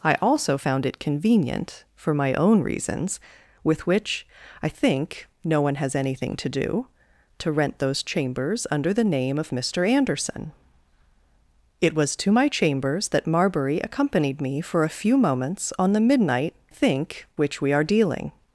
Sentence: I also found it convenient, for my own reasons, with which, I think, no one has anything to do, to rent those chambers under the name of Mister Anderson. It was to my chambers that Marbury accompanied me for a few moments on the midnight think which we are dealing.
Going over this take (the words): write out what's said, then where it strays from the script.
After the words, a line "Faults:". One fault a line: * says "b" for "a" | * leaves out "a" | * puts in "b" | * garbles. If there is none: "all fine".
I also found it convenient, for my own reasons, with which, I think, no one has anything to do, to rent those chambers under the name of Mister Anderson. It was to my chambers that Marbury accompanied me for a few moments on the midnight think which we are dealing.
Faults:
all fine